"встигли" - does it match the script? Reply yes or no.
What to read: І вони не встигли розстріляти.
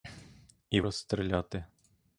no